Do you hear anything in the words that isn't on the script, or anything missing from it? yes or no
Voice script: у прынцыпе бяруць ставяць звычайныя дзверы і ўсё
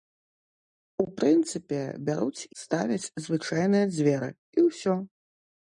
no